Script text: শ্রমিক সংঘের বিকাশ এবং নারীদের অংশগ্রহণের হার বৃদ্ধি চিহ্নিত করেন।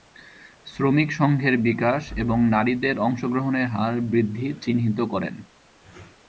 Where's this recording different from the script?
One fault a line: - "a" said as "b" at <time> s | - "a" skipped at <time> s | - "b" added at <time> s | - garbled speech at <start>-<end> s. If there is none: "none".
none